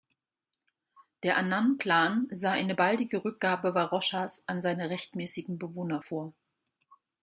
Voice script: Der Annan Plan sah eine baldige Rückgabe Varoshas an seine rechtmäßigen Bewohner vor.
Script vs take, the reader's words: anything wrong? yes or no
no